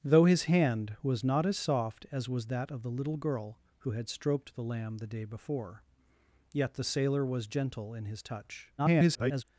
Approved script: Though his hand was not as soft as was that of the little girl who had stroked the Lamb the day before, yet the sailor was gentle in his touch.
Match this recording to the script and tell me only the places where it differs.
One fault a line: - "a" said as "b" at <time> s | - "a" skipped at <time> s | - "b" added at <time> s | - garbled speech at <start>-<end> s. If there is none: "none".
- garbled speech at 8.8-9.4 s